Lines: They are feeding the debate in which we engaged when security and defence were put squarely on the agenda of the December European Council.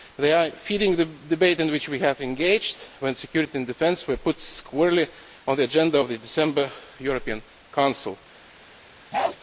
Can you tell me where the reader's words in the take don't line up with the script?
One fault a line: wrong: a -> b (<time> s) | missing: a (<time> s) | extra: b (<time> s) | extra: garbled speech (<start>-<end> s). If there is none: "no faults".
no faults